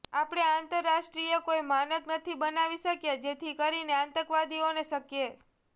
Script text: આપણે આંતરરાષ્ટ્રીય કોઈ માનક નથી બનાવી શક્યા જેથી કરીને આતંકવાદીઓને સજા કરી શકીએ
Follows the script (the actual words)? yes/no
no